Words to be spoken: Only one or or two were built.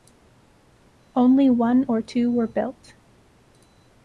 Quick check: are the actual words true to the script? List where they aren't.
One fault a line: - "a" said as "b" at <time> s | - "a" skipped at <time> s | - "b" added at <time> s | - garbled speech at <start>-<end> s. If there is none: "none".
- "or" skipped at 2.0 s